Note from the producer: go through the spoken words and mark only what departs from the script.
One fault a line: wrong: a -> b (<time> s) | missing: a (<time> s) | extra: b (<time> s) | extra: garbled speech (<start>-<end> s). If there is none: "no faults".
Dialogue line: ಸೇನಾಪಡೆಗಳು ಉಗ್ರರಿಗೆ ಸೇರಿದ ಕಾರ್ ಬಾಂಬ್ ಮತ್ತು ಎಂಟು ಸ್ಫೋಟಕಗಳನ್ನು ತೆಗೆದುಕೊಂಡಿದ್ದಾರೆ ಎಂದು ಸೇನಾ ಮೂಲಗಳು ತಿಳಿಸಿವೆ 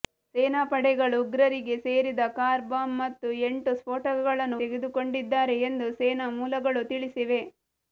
no faults